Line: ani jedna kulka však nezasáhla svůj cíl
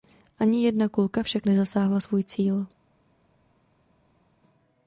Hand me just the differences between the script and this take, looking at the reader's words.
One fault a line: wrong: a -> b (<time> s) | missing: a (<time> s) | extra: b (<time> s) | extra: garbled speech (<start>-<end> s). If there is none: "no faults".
no faults